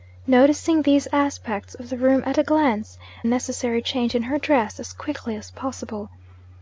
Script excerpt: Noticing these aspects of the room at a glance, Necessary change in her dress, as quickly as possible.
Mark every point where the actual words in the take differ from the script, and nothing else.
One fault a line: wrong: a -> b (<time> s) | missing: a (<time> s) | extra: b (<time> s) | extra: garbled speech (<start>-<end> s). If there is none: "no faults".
no faults